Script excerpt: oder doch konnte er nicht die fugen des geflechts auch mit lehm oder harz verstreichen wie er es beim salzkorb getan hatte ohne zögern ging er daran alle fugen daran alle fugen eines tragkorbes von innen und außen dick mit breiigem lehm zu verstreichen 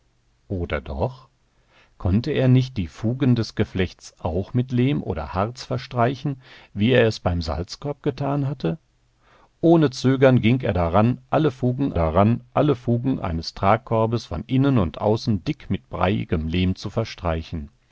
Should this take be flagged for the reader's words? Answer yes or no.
no